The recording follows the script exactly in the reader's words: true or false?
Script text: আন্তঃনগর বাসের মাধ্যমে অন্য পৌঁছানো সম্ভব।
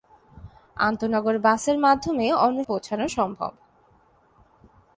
true